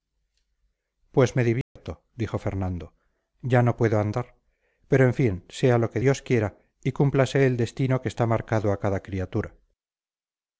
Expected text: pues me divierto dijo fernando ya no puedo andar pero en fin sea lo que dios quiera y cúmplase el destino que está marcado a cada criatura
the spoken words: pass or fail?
pass